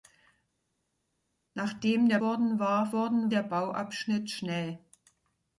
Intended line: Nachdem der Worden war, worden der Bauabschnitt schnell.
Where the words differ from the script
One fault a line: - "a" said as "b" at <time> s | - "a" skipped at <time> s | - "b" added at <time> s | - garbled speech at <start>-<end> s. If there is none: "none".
none